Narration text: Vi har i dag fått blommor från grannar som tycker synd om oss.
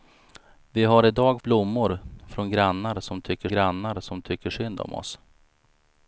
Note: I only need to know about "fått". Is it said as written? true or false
false